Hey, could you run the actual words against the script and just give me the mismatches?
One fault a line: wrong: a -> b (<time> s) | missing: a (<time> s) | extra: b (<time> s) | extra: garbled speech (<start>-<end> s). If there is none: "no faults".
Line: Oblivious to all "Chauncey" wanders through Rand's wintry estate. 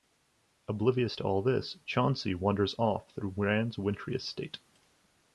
extra: this (1.4 s)
extra: off (2.8 s)